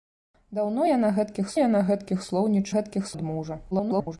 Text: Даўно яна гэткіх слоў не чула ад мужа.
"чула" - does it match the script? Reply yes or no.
no